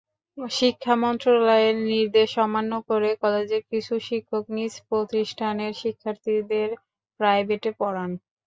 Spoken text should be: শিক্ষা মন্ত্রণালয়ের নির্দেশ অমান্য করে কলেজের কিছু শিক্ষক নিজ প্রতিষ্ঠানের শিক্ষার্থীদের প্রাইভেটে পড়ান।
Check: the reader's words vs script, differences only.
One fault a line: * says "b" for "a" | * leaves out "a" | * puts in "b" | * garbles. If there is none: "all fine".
all fine